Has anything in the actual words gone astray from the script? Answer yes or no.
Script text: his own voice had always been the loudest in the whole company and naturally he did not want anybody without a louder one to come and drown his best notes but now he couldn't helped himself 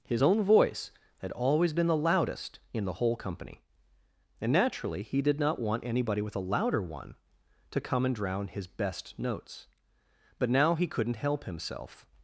yes